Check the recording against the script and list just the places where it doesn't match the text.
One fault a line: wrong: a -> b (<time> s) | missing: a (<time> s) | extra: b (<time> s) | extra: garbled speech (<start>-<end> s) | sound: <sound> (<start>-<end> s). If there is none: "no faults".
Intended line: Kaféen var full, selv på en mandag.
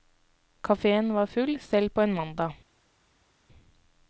no faults